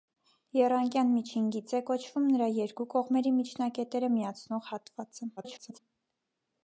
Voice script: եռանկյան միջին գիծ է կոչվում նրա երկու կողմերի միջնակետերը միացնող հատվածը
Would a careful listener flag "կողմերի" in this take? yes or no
no